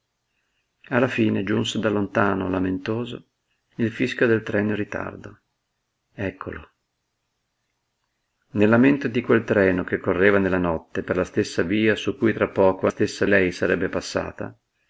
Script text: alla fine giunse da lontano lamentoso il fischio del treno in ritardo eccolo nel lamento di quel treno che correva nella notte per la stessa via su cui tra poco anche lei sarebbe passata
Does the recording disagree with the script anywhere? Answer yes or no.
yes